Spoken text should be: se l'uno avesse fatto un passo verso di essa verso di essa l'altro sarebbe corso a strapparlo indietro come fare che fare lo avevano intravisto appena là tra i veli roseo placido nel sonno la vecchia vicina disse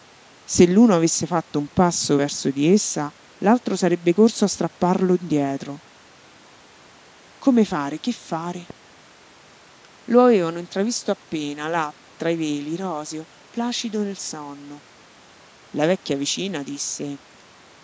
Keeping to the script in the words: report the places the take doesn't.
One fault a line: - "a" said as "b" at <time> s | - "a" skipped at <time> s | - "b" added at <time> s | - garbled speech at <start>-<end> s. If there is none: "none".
- "verso di essa" skipped at 3.1 s